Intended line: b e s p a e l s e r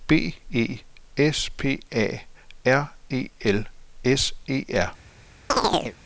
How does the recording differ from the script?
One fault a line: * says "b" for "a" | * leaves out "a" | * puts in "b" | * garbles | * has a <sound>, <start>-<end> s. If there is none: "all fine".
* puts in "r"
* has a chirp, 5.5-6.0 s